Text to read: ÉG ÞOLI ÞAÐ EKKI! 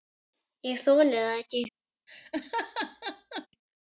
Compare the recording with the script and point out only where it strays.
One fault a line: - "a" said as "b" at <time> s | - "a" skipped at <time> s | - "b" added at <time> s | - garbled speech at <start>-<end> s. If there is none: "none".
none